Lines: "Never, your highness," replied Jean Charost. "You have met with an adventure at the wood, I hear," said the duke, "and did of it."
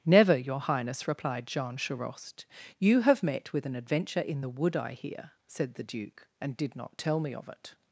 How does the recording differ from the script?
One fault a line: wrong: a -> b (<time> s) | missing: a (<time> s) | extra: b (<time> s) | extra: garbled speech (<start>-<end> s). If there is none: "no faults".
wrong: at -> in (4.2 s)
extra: not tell me (6.8 s)